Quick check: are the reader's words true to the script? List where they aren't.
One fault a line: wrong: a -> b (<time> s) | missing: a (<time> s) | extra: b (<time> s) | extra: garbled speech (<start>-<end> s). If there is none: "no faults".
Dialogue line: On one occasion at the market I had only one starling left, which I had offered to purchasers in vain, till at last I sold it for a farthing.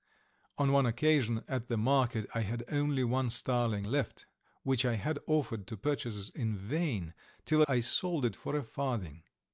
missing: at last (7.6 s)